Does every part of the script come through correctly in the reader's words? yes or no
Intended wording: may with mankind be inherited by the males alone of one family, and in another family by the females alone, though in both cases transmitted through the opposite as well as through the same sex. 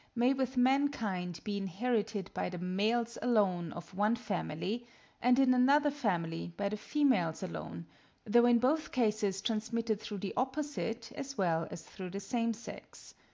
yes